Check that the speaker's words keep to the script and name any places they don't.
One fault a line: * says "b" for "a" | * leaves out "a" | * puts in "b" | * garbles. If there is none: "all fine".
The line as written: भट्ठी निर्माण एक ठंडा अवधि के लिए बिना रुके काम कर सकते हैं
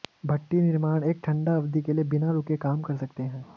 all fine